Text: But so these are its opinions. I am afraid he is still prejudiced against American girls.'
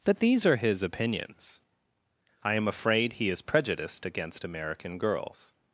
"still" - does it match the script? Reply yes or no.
no